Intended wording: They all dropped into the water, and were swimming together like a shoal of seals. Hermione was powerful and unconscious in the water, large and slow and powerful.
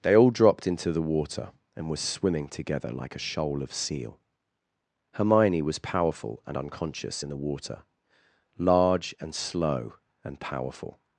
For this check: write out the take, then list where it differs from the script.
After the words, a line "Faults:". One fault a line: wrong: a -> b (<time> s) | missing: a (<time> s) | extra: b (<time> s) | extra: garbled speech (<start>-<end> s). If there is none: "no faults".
They all dropped into the water, and were swimming together like a shoal of seal. Hermione was powerful and unconscious in the water, large and slow and powerful.
Faults:
wrong: seals -> seal (3.7 s)